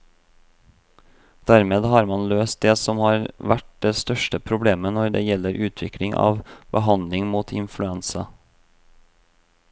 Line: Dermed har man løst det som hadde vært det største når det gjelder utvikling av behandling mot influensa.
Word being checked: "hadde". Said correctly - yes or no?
no